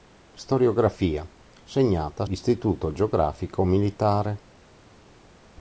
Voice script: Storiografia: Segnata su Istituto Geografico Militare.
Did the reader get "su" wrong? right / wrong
wrong